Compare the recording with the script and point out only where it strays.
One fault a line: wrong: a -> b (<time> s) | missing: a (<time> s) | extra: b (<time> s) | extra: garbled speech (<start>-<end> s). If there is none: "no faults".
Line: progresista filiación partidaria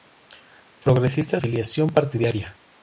no faults